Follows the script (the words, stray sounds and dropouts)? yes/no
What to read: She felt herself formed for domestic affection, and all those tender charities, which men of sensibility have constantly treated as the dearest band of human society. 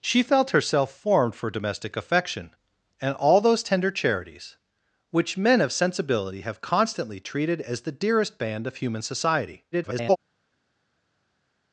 no